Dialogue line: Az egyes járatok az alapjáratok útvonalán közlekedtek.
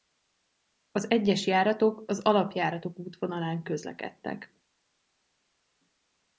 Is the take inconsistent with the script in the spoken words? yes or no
no